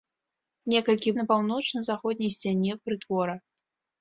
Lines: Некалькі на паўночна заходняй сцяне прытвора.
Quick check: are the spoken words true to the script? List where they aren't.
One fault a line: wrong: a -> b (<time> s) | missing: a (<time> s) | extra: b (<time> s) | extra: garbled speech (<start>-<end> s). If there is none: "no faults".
no faults